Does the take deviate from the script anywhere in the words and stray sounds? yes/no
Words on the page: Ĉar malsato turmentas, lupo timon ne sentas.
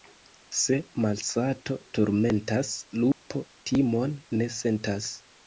yes